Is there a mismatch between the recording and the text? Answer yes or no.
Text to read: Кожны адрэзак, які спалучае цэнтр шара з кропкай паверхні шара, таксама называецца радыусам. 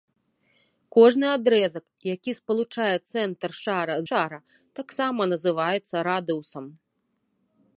yes